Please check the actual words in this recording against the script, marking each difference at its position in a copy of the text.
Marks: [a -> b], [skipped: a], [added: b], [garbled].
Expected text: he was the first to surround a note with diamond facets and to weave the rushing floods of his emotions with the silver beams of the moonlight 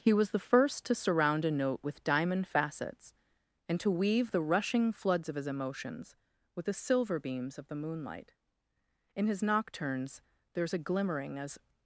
he was the first to surround a note with diamond facets and to weave the rushing floods of his emotions with the silver beams of the moonlight [added: in his nocturnes there is a glimmering as]